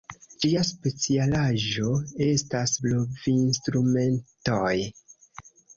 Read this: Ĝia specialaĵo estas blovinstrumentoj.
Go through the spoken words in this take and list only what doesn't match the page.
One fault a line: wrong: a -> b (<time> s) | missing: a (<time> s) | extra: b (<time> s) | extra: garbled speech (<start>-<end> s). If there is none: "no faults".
no faults